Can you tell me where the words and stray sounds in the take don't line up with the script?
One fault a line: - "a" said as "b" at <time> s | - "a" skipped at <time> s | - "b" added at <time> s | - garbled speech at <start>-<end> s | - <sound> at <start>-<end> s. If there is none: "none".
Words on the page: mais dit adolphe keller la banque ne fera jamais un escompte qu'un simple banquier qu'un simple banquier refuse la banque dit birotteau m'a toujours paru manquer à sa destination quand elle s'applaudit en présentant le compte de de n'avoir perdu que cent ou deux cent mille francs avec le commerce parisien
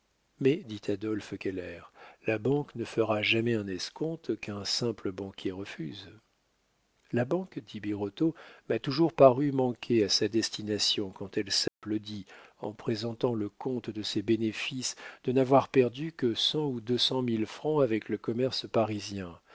- "qu'un simple banquier" skipped at 5.5 s
- dropout at 11.7-11.8 s
- "ses bénéfices" added at 14.0 s